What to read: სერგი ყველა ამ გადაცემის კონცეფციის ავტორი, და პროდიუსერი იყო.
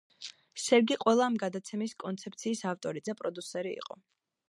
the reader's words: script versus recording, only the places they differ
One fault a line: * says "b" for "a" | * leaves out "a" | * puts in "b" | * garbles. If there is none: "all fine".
all fine